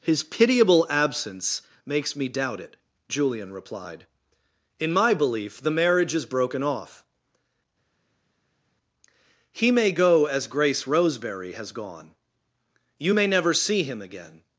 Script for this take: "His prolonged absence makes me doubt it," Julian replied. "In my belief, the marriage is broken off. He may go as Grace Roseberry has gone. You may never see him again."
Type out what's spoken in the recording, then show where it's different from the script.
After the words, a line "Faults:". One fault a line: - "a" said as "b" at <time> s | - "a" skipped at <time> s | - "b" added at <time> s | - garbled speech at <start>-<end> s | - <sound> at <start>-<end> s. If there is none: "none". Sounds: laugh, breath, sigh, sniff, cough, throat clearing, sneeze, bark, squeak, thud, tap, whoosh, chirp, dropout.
"His pitiable absence makes me doubt it," Julian replied. "In my belief, the marriage is broken off. He may go as Grace Roseberry has gone. You may never see him again."
Faults:
- "prolonged" said as "pitiable" at 0.2 s